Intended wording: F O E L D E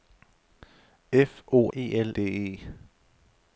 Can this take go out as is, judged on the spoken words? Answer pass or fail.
pass